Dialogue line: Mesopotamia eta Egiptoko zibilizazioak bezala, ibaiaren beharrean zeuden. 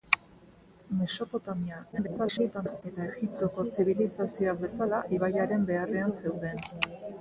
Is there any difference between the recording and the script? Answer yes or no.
yes